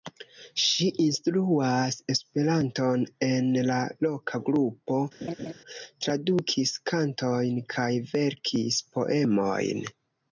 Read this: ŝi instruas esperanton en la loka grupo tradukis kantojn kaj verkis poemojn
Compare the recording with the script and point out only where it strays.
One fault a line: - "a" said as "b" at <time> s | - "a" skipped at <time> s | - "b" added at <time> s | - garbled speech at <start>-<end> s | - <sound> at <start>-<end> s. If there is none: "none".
- laugh at 5.2-5.5 s